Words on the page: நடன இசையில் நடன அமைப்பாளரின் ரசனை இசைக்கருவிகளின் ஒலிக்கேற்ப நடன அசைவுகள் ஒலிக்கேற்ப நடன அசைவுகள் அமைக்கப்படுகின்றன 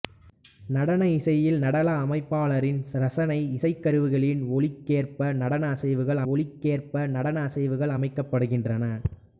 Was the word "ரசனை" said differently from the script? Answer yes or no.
no